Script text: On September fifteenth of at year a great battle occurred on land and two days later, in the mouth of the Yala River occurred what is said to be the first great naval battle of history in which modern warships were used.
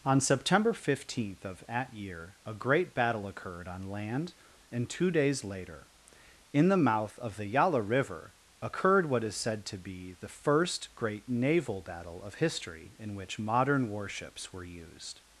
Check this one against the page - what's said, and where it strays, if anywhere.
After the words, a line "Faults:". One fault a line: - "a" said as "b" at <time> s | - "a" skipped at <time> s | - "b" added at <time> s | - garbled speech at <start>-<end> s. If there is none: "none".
On September fifteenth of at year a great battle occurred on land and two days later, in the mouth of the Yala River occurred what is said to be the first great naval battle of history in which modern warships were used.
Faults:
none